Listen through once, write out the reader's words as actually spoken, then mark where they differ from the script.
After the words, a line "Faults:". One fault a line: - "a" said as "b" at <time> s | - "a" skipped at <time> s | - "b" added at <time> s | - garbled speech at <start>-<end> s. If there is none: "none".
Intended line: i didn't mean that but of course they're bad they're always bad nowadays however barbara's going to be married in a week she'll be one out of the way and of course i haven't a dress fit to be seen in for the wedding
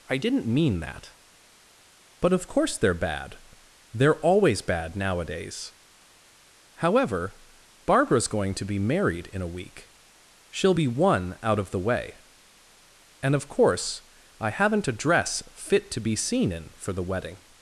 i didn't mean that but of course they're bad they're always bad nowadays however barbara's going to be married in a week she'll be one out of the way and of course i haven't a dress fit to be seen in for the wedding
Faults:
none